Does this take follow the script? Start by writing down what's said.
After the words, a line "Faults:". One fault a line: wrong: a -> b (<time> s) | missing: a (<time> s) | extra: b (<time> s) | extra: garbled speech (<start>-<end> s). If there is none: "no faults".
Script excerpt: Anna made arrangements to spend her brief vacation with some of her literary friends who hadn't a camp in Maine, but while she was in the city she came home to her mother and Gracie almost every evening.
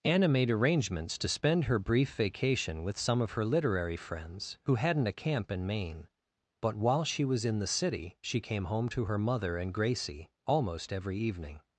Anna made arrangements to spend her brief vacation with some of her literary friends who hadn't a camp in Maine, but while she was in the city she came home to her mother and Gracie almost every evening.
Faults:
no faults